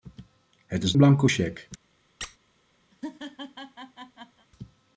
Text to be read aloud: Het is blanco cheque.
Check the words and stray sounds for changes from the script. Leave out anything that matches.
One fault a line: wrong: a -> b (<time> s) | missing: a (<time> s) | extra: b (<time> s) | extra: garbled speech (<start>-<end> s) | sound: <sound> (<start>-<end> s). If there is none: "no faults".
sound: squeak (2.2-2.4 s)
sound: laugh (2.9-4.5 s)